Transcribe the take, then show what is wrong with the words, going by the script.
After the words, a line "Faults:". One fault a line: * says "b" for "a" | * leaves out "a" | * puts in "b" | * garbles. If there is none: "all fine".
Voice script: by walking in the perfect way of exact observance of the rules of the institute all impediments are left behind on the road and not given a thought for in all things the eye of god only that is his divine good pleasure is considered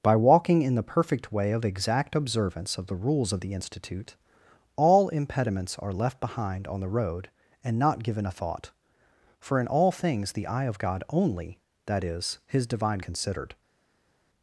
by walking in the perfect way of exact observance of the rules of the institute all impediments are left behind on the road and not given a thought for in all things the eye of god only that is his divine considered
Faults:
* leaves out "good pleasure is"